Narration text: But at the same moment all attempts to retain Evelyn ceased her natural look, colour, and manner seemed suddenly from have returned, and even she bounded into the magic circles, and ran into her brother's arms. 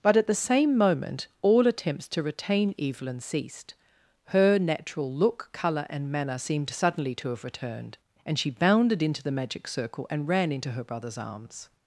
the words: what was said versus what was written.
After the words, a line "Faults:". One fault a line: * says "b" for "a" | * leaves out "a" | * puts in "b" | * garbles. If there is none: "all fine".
But at the same moment all attempts to retain Evelyn ceased her natural look, colour, and manner seemed suddenly to have returned, and she bounded into the magic circle, and ran into her brother's arms.
Faults:
* says "to" for "from"
* leaves out "even"
* says "circle" for "circles"